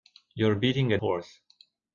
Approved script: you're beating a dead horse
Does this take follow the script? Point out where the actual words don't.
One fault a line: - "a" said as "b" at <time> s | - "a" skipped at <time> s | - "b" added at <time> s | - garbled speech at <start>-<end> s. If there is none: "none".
- "dead" skipped at 1.0 s